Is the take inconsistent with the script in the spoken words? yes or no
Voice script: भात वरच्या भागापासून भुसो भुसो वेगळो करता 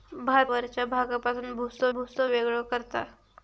no